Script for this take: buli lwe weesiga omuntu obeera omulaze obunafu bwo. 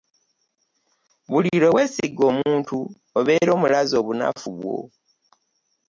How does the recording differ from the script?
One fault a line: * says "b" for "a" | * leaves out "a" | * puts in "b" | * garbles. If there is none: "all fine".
all fine